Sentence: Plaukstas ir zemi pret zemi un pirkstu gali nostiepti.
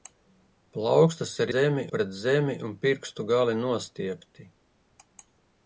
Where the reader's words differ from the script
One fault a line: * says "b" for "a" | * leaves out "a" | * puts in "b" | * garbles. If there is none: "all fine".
all fine